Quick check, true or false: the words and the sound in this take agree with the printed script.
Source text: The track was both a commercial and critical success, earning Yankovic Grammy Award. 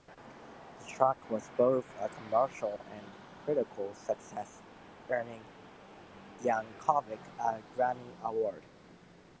false